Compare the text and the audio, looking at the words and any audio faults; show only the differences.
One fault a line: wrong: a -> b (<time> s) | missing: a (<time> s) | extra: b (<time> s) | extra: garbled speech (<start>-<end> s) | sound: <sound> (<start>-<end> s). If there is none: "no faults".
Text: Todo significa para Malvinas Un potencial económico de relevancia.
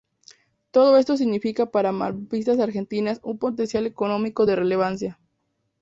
extra: esto (1.0 s)
extra: Argentinas (2.6 s)